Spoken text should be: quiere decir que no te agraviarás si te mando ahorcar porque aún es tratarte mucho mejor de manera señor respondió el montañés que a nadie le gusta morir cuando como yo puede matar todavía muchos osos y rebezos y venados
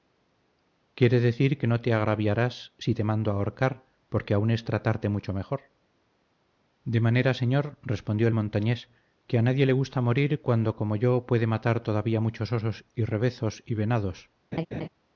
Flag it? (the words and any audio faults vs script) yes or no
yes